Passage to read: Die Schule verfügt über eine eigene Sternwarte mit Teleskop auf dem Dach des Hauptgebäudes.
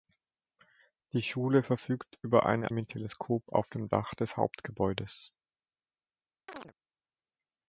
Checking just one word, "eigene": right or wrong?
wrong